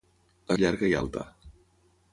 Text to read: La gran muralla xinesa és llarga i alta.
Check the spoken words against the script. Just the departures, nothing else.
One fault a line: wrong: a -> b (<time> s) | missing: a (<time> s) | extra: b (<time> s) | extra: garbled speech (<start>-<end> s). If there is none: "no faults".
missing: gran muralla xinesa (0.6 s)